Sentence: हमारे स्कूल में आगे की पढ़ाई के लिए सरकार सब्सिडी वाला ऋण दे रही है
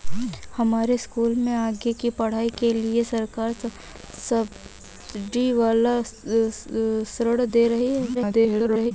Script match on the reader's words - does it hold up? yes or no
no